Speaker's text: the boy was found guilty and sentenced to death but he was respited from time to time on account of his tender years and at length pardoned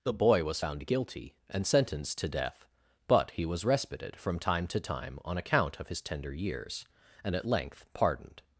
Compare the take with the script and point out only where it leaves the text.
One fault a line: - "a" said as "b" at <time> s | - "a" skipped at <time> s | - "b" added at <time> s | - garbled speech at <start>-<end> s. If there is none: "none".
none